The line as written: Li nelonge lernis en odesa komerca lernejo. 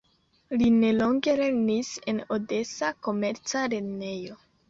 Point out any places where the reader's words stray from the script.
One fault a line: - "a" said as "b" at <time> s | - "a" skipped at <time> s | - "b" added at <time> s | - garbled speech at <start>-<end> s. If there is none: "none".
none